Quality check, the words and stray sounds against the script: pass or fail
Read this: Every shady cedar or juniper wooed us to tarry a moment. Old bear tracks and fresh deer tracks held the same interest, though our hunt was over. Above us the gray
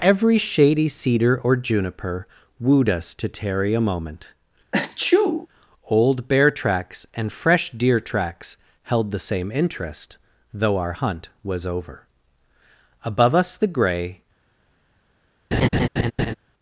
fail